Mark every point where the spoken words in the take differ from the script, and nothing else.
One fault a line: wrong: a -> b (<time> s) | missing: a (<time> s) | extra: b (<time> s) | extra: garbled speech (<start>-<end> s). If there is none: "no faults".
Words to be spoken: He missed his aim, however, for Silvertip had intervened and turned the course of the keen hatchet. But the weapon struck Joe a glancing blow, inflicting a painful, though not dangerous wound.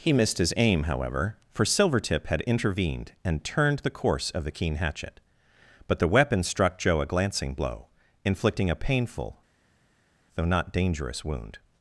no faults